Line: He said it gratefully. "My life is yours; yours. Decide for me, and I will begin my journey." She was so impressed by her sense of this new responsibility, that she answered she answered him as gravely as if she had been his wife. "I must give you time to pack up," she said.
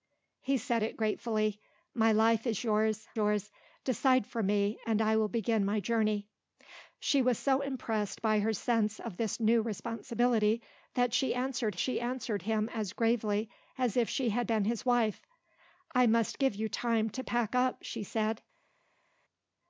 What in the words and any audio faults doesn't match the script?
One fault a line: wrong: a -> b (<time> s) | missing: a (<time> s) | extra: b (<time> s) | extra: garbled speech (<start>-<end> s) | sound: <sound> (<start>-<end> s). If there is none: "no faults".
no faults